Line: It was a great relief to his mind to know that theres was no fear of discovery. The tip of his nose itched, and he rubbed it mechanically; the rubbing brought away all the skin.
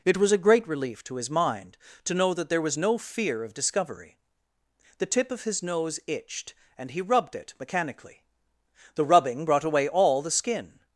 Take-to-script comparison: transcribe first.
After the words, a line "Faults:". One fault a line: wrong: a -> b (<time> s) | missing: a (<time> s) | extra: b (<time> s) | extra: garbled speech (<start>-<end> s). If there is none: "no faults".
It was a great relief to his mind to know that there was no fear of discovery. The tip of his nose itched, and he rubbed it mechanically; the rubbing brought away all the skin.
Faults:
wrong: theres -> there (2.5 s)